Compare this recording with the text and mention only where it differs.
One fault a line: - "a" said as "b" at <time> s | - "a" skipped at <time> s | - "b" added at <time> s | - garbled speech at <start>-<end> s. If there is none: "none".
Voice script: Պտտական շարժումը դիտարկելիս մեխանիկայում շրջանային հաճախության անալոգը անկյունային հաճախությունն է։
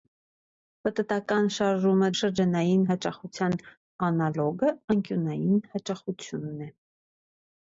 - "դիտարկելիս մեխանիկայում" skipped at 2.1 s